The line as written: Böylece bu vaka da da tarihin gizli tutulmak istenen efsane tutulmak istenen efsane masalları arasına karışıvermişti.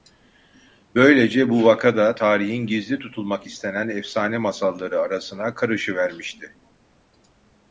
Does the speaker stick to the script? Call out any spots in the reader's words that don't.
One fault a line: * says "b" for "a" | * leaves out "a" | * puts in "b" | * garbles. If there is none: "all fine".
* leaves out "da"
* leaves out "tutulmak istenen efsane"